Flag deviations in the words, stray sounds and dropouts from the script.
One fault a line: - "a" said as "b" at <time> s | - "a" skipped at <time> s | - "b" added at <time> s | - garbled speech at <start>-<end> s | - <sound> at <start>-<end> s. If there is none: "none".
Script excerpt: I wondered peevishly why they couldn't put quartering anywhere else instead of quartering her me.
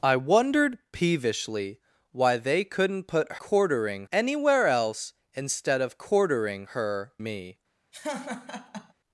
- laugh at 7.9-8.9 s